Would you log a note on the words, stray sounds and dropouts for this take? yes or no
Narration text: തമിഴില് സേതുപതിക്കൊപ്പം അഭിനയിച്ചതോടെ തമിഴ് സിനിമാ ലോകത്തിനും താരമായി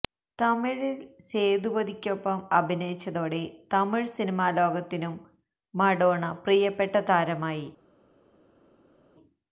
yes